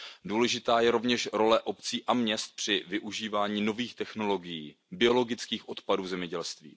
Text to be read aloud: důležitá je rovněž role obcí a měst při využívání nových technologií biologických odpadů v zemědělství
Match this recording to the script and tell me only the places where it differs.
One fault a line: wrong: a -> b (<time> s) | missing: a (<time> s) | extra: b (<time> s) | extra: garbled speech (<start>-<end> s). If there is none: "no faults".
no faults